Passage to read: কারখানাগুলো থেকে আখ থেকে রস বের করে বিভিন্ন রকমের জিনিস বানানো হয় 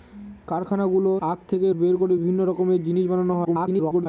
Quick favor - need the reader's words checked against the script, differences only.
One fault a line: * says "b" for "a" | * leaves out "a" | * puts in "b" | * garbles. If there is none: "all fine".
* leaves out "থেকে"
* leaves out "রস"
* garbles